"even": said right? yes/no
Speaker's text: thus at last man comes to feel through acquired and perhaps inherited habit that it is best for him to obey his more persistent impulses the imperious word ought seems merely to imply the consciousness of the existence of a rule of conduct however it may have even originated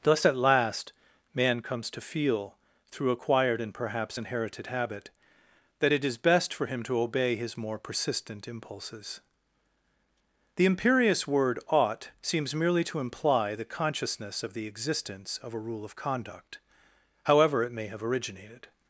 no